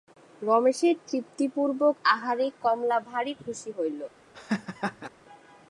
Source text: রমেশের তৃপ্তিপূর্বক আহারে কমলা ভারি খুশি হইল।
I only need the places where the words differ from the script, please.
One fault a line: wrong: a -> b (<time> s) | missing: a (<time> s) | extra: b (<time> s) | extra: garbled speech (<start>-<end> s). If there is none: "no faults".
no faults